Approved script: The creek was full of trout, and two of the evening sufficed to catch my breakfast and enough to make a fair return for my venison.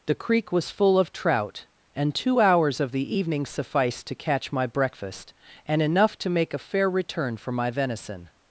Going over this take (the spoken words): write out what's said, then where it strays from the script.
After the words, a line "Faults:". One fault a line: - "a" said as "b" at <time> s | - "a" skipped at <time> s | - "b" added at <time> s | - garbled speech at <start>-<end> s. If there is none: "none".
The creek was full of trout, and two hours of the evening sufficed to catch my breakfast and enough to make a fair return for my venison.
Faults:
- "hours" added at 2.4 s